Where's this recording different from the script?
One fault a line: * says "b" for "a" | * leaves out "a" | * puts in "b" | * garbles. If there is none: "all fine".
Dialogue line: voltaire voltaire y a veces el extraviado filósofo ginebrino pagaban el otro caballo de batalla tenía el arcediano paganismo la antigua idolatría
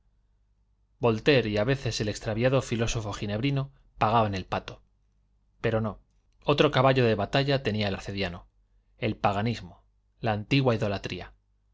* leaves out "voltaire"
* puts in "pato pero no"
* puts in "el"